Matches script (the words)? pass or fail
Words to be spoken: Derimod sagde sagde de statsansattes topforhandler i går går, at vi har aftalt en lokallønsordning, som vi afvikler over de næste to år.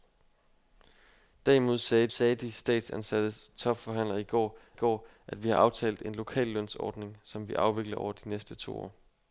pass